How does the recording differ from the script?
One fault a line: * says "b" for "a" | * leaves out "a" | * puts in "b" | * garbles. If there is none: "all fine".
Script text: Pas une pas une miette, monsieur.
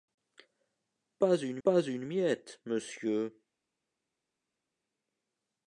all fine